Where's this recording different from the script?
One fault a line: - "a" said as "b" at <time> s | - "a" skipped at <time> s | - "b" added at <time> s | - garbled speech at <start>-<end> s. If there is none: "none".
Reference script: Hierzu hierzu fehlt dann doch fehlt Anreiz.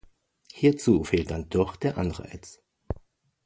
- "hierzu" skipped at 1.0 s
- "fehlt" said as "der" at 1.7 s